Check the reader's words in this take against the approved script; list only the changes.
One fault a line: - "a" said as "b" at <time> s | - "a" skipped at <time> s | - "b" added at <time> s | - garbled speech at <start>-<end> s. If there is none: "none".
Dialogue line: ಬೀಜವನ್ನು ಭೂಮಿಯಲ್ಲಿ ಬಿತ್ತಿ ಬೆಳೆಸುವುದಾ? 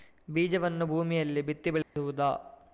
none